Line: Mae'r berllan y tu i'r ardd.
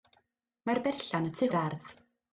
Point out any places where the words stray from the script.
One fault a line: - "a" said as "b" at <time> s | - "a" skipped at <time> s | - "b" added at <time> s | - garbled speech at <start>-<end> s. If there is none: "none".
none